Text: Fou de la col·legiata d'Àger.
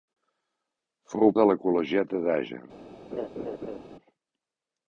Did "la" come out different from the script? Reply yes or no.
no